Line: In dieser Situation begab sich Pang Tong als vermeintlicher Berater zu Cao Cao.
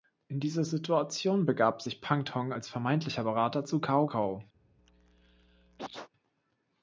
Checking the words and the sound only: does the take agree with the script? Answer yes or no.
no